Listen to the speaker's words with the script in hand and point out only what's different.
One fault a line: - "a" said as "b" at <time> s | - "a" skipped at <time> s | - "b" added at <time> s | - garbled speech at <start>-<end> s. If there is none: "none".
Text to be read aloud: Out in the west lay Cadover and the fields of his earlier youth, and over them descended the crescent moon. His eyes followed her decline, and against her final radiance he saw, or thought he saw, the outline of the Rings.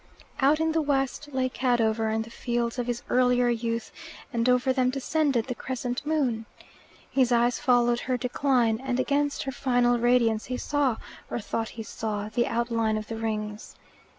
none